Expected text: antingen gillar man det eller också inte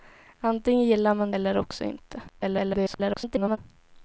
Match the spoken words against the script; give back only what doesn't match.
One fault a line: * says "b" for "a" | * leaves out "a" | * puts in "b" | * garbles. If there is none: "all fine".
* leaves out "det"
* garbles